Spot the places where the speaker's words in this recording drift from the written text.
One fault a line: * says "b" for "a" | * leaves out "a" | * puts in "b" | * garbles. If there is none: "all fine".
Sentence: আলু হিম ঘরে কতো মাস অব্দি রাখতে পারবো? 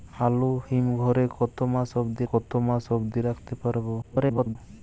* puts in "কতো মাস অব্দি"
* garbles